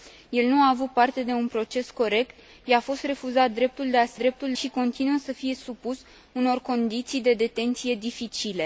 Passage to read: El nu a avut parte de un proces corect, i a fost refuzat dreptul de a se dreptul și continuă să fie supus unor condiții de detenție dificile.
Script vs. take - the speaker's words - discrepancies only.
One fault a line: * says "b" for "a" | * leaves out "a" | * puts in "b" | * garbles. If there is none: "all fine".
all fine